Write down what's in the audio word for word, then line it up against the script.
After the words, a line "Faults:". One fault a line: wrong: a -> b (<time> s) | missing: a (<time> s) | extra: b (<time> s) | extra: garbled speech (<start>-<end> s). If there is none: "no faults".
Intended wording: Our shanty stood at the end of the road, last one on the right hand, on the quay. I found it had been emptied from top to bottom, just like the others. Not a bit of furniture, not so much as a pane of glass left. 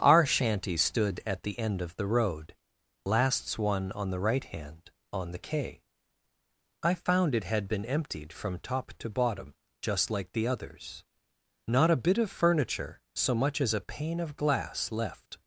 Our shanty stood at the end of the road, lasts one on the right hand, on the quay. I found it had been emptied from top to bottom, just like the others. Not a bit of furniture, so much as a pane of glass left.
Faults:
wrong: last -> lasts (3.0 s)
missing: not (13.0 s)